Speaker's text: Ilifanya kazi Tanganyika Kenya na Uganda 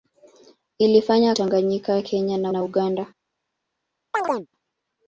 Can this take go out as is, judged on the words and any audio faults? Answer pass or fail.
fail